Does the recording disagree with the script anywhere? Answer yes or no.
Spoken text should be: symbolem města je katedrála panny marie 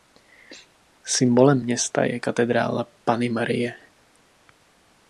no